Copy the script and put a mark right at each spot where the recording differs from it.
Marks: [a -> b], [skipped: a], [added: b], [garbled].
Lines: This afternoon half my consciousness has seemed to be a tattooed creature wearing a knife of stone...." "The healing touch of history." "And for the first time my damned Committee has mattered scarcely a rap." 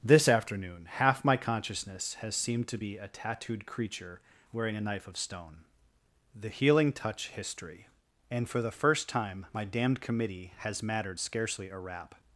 This afternoon half my consciousness has seemed to be a tattooed creature wearing a knife of stone...." "The healing touch [skipped: of] history." "And for the first time my damned Committee has mattered scarcely a rap."